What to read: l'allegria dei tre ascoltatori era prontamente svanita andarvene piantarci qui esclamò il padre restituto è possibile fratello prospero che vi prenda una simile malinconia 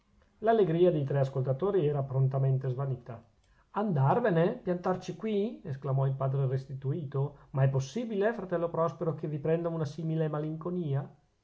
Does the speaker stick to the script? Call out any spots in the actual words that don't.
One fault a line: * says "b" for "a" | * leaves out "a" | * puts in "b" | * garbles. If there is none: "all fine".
* puts in "ma"